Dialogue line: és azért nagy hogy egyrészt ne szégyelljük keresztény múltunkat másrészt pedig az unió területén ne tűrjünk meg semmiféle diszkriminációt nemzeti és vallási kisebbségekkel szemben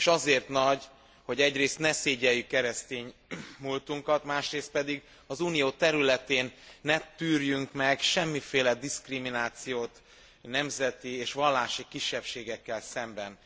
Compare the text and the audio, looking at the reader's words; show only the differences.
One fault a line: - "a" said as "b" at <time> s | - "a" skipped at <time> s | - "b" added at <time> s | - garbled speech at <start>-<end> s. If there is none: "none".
none